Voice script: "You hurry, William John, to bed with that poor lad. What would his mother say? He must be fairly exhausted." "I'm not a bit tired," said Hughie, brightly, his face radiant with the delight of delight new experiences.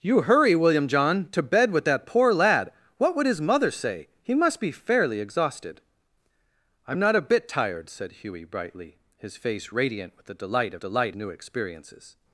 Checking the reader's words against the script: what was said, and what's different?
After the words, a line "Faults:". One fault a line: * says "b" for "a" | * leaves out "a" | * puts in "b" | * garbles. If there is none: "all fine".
"You hurry, William John, to bed with that poor lad. What would his mother say? He must be fairly exhausted." "I'm not a bit tired," said Hughie, brightly, his face radiant with the delight of delight new experiences.
Faults:
all fine